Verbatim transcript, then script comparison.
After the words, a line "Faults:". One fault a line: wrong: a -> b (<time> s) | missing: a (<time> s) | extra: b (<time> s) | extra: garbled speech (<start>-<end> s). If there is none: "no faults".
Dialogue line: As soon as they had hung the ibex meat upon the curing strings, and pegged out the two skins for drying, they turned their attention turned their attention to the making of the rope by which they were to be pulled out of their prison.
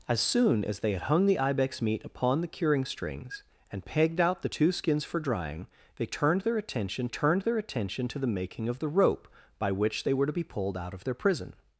As soon as they had hung the ibex meat upon the curing strings, and pegged out the two skins for drying, they turned their attention turned their attention to the making of the rope by which they were to be pulled out of their prison.
Faults:
no faults